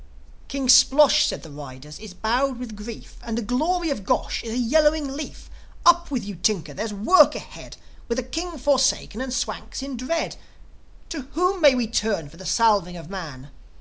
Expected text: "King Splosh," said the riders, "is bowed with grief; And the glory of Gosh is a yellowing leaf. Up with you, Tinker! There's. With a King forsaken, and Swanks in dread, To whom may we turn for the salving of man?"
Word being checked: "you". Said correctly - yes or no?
yes